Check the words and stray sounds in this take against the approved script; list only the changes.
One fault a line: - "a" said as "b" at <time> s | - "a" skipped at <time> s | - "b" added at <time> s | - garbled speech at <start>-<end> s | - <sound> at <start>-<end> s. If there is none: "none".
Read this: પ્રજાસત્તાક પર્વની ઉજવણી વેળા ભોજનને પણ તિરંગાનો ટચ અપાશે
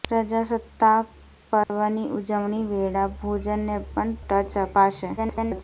- dropout at 1.6-1.7 s
- "તિરંગાનો" skipped at 4.2 s
- garbled speech at 5.2-5.6 s